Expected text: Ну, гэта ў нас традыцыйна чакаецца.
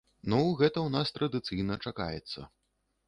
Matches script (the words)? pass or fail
pass